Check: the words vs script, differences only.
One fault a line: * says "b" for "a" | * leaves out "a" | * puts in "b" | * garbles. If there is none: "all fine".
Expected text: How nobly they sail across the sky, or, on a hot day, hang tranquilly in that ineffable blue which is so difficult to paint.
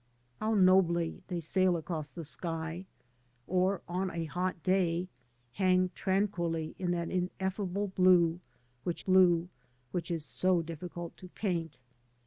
* puts in "blue which"